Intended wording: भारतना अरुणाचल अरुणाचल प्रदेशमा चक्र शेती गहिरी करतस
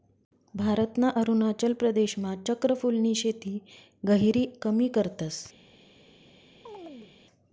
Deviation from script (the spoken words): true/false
true